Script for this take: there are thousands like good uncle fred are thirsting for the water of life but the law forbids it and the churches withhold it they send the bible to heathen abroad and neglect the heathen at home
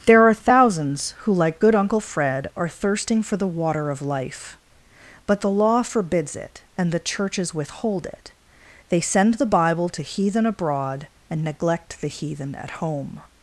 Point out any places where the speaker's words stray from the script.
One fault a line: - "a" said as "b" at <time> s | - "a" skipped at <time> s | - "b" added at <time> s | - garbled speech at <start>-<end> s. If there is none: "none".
- "who" added at 1.2 s